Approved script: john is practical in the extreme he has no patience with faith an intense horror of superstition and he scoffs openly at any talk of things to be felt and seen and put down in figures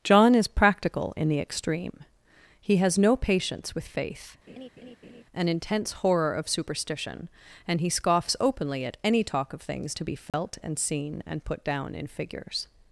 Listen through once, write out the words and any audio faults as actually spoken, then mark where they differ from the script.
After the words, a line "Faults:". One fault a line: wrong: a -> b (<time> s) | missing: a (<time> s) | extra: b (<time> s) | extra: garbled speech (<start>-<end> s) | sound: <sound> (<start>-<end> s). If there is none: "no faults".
john is practical in the extreme he has no patience with faith an intense horror of superstition and he scoffs openly at any talk of things to be felt and seen and put down in figures
Faults:
sound: laugh (4.5-5.2 s)
sound: dropout (10.3-10.3 s)